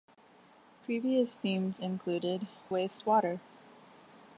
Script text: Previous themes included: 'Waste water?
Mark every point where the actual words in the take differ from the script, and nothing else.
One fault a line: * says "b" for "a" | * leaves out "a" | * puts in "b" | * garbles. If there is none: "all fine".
all fine